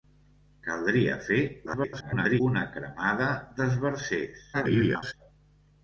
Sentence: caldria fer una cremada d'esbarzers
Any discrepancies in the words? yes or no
yes